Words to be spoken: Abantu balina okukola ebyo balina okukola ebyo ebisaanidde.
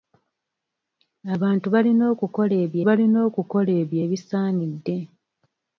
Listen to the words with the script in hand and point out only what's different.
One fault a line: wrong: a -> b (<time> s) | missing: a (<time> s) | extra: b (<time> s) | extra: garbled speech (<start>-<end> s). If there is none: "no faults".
no faults